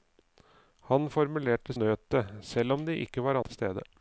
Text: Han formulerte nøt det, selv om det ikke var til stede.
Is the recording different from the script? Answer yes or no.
no